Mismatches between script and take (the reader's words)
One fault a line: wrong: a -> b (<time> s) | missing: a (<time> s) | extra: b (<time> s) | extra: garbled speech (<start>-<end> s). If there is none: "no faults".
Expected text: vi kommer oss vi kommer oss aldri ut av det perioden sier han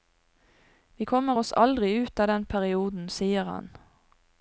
missing: vi kommer oss (1.5 s)
wrong: det -> den (2.3 s)